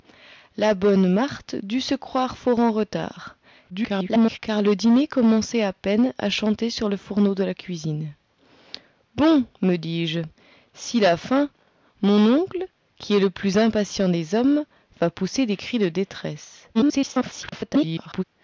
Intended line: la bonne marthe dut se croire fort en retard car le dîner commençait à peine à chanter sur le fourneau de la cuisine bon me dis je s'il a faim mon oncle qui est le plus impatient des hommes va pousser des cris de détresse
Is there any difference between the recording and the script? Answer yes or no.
yes